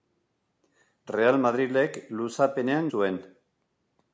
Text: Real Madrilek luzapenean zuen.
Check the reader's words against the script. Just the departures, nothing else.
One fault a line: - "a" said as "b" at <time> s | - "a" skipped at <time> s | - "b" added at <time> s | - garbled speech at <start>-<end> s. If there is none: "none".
none